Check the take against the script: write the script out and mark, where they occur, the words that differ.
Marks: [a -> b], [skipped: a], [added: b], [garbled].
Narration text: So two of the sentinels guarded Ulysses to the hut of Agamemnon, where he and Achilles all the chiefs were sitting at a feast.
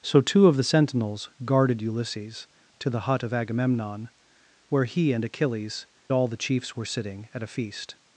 So two of the sentinels guarded Ulysses to the hut of Agamemnon, where he and Achilles all the chiefs were sitting at a feast.